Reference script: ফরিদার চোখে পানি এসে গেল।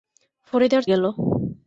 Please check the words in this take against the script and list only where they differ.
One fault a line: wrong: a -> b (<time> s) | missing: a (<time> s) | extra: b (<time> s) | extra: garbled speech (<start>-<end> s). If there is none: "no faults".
missing: চোখে পানি এসে (0.8 s)